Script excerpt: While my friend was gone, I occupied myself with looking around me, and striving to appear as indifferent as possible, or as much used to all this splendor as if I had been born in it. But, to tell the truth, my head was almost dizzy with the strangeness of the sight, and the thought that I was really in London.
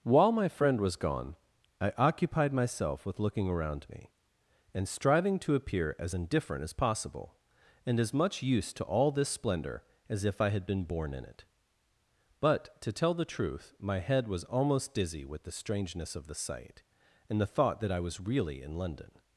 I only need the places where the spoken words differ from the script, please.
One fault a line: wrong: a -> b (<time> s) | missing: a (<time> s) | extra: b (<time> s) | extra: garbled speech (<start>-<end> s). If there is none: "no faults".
wrong: or -> and (7.8 s)